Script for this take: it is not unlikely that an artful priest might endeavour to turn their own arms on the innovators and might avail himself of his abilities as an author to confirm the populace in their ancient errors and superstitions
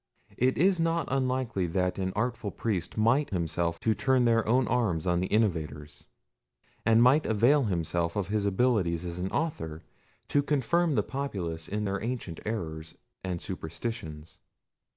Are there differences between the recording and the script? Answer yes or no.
yes